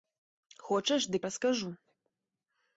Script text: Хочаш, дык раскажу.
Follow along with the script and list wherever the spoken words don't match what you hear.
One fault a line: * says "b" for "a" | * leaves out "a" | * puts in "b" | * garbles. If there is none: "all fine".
all fine